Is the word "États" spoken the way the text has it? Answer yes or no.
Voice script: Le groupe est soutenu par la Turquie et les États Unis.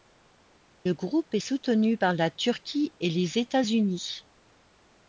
yes